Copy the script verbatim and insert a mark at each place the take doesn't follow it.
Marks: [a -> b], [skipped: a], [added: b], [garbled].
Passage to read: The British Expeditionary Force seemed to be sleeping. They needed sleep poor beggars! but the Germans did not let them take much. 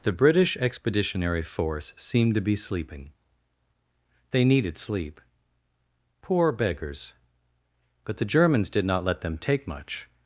The British Expeditionary Force seemed to be sleeping. They needed sleep poor beggars! but the Germans did not let them take much.